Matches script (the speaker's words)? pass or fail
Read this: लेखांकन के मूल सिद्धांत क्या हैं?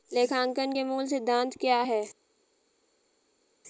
pass